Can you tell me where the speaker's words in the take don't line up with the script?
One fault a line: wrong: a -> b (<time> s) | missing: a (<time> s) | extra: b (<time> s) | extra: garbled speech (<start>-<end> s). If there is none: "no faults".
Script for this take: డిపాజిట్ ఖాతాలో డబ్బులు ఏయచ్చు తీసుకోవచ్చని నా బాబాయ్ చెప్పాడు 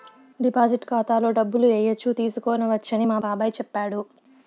wrong: నా -> మా (3.0 s)